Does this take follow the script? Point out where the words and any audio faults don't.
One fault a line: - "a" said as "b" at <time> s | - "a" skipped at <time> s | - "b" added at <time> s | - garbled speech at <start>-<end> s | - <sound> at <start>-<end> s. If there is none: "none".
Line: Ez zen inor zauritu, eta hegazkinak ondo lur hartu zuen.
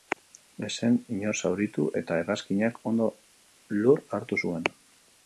none